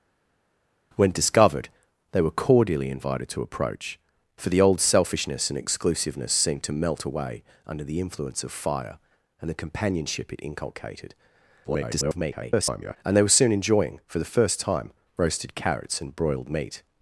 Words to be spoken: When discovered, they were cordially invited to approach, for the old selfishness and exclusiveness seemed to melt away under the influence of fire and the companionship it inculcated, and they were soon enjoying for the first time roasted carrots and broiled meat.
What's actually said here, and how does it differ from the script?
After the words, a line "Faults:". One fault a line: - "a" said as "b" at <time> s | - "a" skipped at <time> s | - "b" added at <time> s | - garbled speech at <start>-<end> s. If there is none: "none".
When discovered, they were cordially invited to approach, for the old selfishness and exclusiveness seemed to melt away under the influence of fire and the companionship it inculcated, [garbled] and they were soon enjoying for the first time roasted carrots and broiled meat.
Faults:
- garbled speech at 11.6-13.0 s